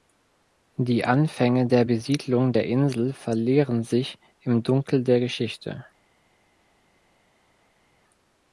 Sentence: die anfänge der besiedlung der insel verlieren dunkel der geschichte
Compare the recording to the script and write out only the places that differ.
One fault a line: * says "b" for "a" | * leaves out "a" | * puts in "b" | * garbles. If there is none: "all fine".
* puts in "sich im"